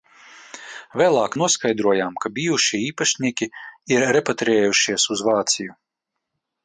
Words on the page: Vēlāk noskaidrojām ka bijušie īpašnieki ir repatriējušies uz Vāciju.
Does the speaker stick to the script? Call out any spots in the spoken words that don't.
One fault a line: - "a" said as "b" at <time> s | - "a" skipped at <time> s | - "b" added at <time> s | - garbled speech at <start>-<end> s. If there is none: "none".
none